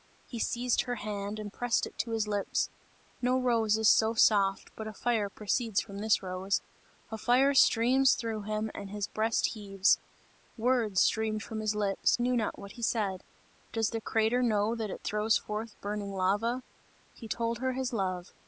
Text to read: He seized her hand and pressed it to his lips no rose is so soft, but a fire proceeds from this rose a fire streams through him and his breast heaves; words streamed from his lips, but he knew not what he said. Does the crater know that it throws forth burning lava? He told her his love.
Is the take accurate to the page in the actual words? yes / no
no